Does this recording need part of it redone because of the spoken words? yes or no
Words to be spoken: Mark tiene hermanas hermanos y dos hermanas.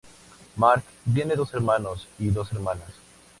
yes